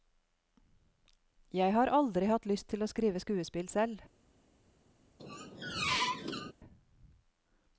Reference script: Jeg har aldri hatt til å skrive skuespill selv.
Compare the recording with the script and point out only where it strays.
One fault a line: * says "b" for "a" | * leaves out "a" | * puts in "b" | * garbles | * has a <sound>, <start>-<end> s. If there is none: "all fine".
* puts in "lyst"
* has a squeak, 5.2-6.5 s